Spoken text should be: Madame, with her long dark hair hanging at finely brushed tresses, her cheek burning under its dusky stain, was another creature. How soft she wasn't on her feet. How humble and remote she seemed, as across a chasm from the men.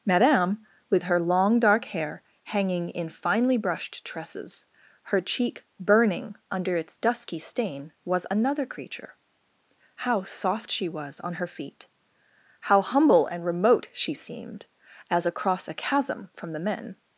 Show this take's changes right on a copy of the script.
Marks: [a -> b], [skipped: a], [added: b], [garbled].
Madame, with her long dark hair hanging [at -> in] finely brushed tresses, her cheek burning under its dusky stain, was another creature. How soft she [wasn't -> was] on her feet. How humble and remote she seemed, as across a chasm from the men.